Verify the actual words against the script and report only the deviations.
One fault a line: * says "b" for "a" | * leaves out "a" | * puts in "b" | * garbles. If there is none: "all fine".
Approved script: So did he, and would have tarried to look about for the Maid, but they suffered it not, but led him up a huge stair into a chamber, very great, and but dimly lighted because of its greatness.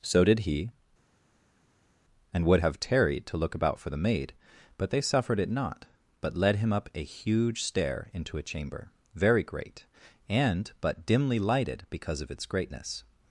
all fine